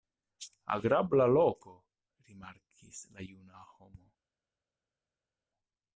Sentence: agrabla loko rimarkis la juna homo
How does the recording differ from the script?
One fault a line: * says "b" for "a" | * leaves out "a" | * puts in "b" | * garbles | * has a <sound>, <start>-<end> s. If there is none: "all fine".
all fine